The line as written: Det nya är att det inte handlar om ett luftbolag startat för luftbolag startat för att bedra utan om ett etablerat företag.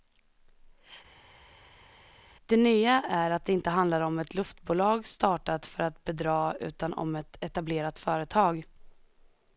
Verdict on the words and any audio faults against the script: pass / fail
fail